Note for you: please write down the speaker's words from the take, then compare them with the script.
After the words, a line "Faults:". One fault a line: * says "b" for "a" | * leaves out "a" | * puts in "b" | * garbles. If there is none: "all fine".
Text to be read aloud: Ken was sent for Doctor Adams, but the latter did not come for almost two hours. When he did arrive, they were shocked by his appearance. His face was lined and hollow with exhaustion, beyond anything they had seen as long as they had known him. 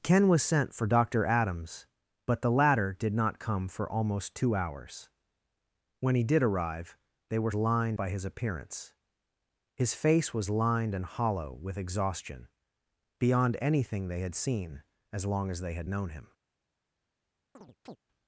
Ken was sent for Doctor Adams, but the latter did not come for almost two hours. When he did arrive, they were lined by his appearance. His face was lined and hollow with exhaustion, beyond anything they had seen as long as they had known him.
Faults:
* says "lined" for "shocked"